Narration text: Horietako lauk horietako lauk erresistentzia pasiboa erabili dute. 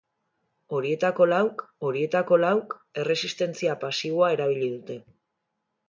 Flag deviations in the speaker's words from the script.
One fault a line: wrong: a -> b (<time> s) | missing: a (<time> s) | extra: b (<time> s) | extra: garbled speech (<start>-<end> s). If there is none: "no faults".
no faults